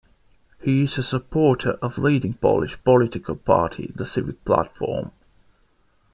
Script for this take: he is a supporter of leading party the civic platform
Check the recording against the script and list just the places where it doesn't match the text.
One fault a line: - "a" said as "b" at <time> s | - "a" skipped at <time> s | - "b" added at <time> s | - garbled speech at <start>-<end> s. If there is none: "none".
- "polish political" added at 2.3 s